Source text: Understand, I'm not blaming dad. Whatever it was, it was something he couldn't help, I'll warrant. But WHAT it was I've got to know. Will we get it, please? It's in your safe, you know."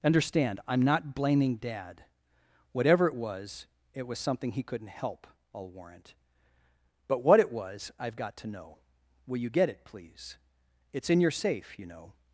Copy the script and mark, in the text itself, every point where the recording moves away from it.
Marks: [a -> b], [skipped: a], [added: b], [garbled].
Understand, I'm not blaming dad. Whatever it was, it was something he couldn't help, I'll warrant. But WHAT it was I've got to know. Will [we -> you] get it, please? It's in your safe, you know."